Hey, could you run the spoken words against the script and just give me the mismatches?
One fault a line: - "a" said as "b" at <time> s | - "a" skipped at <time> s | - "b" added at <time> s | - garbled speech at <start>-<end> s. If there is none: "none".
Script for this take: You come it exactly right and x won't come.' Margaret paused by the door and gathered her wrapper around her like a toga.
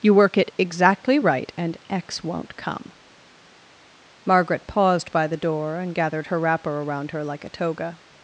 - "come" said as "work" at 0.1 s